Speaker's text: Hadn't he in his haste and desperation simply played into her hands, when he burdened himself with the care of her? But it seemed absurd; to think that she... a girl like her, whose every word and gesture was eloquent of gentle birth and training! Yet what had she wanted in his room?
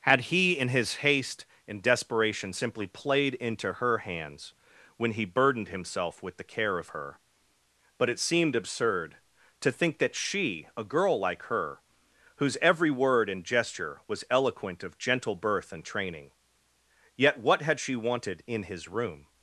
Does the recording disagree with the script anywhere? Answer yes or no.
yes